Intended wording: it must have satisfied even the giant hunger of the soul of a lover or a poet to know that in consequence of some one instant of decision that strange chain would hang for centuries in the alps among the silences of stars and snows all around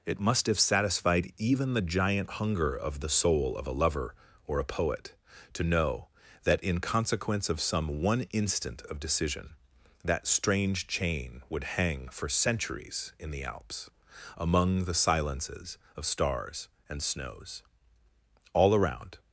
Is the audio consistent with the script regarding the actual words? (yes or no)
yes